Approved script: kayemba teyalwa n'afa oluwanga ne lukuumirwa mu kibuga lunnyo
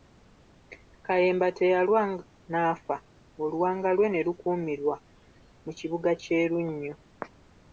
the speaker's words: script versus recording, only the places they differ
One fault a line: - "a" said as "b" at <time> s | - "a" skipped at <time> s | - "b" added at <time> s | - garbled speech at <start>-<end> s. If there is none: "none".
- "lwe" added at 4.0 s
- "kye" added at 6.2 s